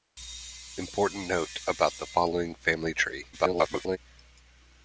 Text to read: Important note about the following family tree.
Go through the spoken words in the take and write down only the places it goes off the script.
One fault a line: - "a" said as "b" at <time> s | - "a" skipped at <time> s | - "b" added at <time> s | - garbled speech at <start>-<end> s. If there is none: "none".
- garbled speech at 3.3-4.0 s